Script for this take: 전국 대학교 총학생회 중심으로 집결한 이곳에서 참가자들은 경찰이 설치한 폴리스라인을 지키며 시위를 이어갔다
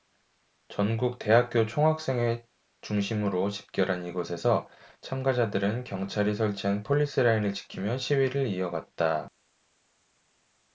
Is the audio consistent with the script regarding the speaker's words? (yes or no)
yes